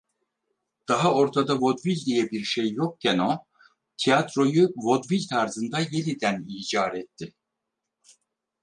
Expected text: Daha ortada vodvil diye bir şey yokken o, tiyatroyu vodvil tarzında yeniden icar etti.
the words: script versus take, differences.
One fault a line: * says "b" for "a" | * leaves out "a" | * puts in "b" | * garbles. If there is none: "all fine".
all fine